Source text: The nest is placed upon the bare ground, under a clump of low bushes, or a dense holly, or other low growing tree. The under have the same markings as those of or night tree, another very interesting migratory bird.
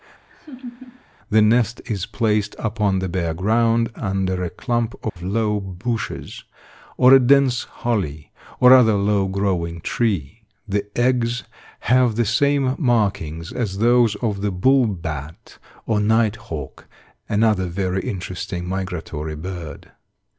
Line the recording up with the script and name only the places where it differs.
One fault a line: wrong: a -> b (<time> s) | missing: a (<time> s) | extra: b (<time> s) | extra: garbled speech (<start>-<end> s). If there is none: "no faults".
wrong: under -> eggs (11.0 s)
extra: the bull bat (14.4 s)
wrong: tree -> hawk (16.4 s)